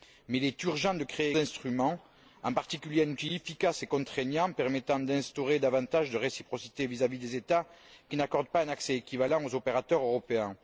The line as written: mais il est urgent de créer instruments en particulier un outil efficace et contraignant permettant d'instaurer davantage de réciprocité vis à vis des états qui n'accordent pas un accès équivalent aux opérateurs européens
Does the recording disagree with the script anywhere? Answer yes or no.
no